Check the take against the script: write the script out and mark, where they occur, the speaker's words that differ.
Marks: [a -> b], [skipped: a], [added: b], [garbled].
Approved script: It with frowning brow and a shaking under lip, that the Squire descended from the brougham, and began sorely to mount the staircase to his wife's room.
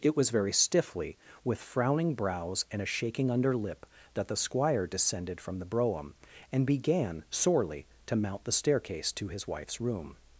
It [added: was very stiffly] with frowning [brow -> brows] and a shaking under lip, that the Squire descended from the brougham, and began sorely to mount the staircase to his wife's room.